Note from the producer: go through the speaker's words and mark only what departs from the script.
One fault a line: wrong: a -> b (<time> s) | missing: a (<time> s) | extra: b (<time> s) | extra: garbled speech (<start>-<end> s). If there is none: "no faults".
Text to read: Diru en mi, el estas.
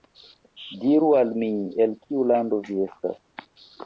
wrong: en -> al (1.2 s)
extra: kiu lando vi (2.0 s)